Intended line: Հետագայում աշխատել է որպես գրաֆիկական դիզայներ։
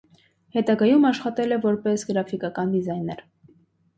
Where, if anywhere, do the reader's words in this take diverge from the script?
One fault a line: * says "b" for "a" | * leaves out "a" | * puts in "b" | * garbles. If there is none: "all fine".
all fine